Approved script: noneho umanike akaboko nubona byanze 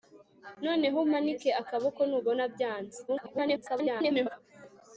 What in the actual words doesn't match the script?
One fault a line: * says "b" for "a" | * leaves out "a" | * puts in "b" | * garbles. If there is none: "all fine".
* garbles